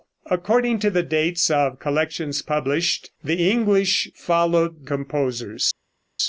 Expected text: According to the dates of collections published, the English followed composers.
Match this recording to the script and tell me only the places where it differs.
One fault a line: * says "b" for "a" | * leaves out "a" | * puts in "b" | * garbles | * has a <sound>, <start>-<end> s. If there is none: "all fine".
all fine